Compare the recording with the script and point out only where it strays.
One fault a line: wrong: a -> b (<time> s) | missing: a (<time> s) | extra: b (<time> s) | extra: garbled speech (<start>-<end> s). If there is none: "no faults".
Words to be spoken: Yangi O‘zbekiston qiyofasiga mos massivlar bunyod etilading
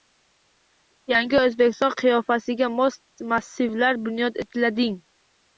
no faults